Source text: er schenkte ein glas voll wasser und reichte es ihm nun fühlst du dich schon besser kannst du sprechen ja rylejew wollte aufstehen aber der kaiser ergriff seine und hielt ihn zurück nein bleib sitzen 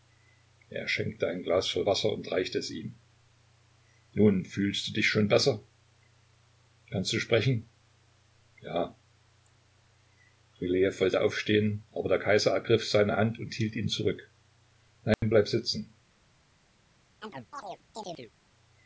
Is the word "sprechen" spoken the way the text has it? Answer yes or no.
yes